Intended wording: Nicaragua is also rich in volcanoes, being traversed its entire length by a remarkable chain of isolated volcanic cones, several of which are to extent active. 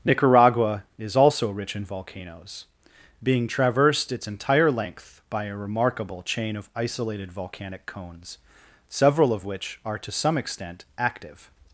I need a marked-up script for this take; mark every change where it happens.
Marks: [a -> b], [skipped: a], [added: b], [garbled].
Nicaragua is also rich in volcanoes, being traversed its entire length by a remarkable chain of isolated volcanic cones, several of which are to [added: some] extent active.